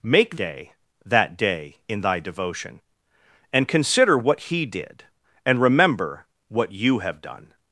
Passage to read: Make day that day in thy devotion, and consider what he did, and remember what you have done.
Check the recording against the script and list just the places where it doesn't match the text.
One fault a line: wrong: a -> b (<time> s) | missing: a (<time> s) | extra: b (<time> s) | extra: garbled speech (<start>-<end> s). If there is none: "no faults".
no faults